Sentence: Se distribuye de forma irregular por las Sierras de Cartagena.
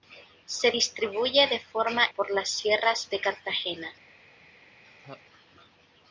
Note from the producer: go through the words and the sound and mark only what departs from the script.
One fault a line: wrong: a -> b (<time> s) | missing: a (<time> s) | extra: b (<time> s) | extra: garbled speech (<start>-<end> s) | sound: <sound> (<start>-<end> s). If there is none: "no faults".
missing: irregular (2.0 s)
sound: laugh (4.8-5.2 s)